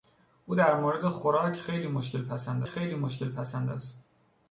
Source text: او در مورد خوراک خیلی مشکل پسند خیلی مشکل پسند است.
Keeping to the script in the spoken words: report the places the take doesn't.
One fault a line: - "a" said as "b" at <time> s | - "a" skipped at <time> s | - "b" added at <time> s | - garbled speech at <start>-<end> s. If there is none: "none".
none